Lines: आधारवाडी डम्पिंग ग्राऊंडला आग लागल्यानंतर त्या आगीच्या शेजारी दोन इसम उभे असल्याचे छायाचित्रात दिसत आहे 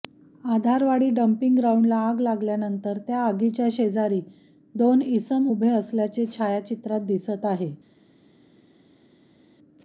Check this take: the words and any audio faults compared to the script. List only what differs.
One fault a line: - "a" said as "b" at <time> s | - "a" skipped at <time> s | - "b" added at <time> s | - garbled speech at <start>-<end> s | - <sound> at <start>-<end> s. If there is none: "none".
none